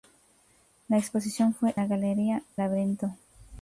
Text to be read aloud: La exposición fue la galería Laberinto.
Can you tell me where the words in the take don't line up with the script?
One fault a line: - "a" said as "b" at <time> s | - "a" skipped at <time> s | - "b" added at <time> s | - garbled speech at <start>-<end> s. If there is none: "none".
none